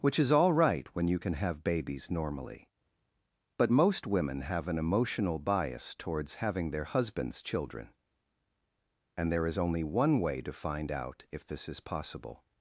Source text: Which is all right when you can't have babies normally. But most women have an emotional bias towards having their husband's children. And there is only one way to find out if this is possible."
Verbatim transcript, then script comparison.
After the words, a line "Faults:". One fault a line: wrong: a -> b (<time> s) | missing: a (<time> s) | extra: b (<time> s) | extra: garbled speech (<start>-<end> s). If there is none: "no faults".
Which is all right when you can have babies normally. But most women have an emotional bias towards having their husband's children. And there is only one way to find out if this is possible."
Faults:
wrong: can't -> can (1.2 s)